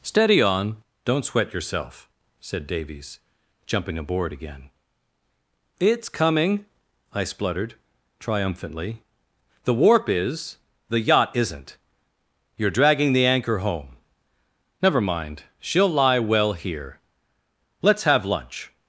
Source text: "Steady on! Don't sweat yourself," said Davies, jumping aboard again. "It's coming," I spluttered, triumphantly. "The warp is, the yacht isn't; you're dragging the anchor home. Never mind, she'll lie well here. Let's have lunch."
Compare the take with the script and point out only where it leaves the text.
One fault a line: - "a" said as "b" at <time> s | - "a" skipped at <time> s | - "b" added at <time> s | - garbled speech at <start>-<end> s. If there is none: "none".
none